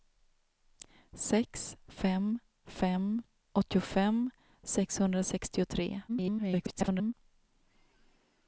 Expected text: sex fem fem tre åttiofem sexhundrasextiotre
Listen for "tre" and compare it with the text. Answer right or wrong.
wrong